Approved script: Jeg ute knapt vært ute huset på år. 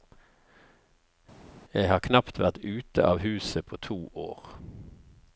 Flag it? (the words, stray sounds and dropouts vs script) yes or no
yes